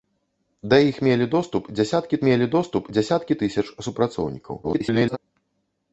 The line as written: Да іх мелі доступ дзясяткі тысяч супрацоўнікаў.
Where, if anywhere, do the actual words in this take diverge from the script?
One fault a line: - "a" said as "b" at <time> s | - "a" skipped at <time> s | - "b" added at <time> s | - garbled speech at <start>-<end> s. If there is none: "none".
- "мелі доступ дзясяткі" added at 2.3 s
- garbled speech at 4.6-5.2 s